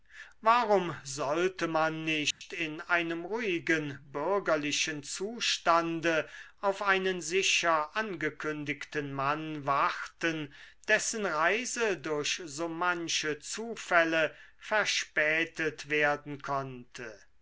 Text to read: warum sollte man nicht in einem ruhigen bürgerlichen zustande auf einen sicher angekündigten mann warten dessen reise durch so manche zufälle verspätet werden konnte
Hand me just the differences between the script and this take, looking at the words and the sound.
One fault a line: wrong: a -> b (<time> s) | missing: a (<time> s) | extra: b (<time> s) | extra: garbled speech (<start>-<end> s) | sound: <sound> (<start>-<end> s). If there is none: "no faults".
sound: dropout (2.3-2.4 s)